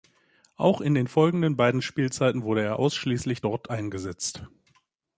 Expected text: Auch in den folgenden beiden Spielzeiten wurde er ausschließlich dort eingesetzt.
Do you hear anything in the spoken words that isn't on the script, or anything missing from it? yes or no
no